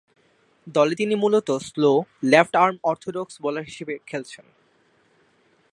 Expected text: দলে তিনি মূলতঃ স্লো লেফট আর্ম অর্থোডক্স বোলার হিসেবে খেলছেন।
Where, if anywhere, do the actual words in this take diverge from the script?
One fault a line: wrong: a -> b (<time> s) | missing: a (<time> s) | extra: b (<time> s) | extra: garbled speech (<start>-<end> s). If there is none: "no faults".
no faults